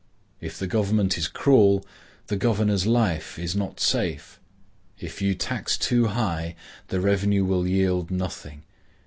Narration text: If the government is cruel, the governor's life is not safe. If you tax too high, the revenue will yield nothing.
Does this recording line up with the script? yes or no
yes